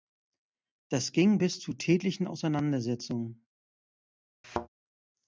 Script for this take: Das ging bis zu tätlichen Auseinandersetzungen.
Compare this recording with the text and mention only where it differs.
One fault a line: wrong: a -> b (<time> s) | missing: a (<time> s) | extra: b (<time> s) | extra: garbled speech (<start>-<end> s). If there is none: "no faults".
no faults